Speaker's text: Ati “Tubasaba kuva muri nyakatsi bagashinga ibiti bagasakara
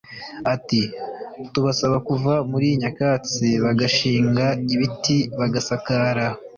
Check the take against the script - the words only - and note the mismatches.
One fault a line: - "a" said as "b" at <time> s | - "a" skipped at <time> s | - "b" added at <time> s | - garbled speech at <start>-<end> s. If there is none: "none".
none